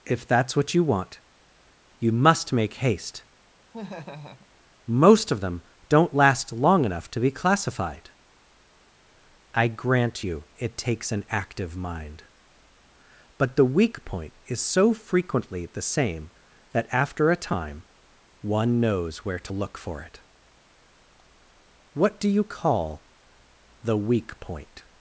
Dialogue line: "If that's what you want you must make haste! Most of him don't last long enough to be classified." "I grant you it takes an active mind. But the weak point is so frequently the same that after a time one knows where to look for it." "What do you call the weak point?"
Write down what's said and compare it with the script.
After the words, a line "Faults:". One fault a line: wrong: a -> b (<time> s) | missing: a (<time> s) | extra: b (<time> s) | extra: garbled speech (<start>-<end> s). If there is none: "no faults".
"If that's what you want you must make haste! Most of them don't last long enough to be classified." "I grant you it takes an active mind. But the weak point is so frequently the same that after a time one knows where to look for it." "What do you call the weak point?"
Faults:
wrong: him -> them (5.4 s)